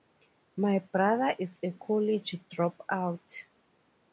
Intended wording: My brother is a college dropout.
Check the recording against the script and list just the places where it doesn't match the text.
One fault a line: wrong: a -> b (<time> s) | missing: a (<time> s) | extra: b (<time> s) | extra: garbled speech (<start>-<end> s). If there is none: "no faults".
no faults